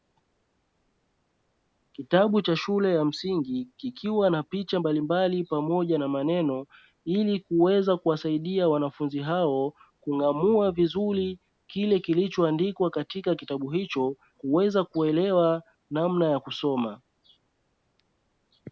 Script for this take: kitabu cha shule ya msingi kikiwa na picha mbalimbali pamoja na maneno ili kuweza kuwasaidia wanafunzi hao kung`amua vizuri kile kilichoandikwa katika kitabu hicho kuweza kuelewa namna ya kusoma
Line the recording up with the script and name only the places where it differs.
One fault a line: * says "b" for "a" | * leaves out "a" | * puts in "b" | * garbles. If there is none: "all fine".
all fine